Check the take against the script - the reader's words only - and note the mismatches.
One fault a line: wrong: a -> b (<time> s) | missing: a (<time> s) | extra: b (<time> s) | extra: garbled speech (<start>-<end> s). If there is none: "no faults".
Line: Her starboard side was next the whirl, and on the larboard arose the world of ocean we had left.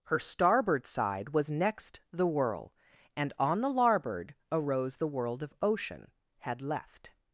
missing: we (6.1 s)